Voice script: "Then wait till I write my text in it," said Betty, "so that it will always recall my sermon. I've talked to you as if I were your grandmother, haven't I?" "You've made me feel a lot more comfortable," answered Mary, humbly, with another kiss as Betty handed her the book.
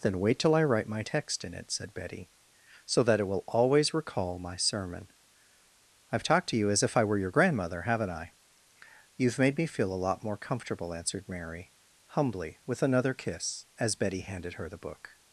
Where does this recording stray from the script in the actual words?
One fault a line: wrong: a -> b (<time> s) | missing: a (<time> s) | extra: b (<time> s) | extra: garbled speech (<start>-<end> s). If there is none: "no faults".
no faults